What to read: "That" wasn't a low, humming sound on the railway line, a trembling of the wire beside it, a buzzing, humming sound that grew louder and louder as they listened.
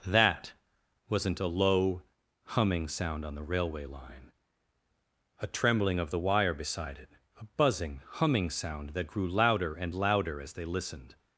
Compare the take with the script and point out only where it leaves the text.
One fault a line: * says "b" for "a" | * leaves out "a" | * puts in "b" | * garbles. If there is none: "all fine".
all fine